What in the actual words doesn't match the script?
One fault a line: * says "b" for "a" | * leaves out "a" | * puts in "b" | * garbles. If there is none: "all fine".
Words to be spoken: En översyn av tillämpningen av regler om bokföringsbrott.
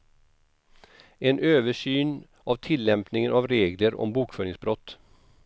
all fine